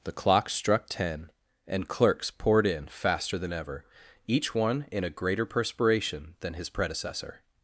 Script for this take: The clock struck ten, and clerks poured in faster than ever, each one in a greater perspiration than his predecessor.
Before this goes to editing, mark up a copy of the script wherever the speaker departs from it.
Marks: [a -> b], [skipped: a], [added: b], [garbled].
The clock struck ten, and clerks poured in faster than ever, each one in a greater perspiration than his predecessor.